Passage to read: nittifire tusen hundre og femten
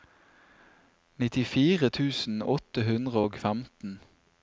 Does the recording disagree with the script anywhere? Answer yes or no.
yes